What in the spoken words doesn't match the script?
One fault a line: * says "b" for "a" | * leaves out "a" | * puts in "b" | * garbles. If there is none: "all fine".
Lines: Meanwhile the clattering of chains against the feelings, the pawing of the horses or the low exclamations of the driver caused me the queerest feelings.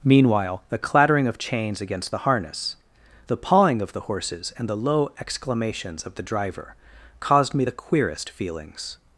* says "harness" for "feelings"
* says "and" for "or"